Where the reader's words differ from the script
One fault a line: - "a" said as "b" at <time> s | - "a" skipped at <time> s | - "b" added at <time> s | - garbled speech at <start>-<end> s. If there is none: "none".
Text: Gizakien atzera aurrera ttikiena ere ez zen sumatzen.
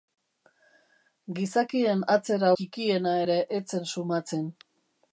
- "aurrera" skipped at 2.5 s